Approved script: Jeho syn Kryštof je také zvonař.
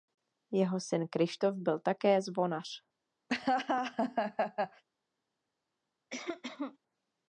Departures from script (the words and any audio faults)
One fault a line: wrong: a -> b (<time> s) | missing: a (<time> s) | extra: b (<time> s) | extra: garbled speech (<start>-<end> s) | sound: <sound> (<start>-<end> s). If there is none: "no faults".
wrong: je -> byl (1.6 s)
sound: laugh (3.3-4.8 s)
sound: cough (6.1-6.8 s)